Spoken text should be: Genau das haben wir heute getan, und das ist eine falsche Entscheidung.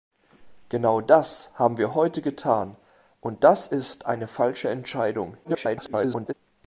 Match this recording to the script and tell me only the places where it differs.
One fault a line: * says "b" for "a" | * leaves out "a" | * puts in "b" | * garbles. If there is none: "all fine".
* garbles